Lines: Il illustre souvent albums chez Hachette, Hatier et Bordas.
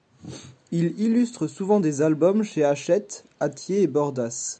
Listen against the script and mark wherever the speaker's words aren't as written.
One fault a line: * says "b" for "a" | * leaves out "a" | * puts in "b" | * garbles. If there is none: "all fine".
* puts in "des"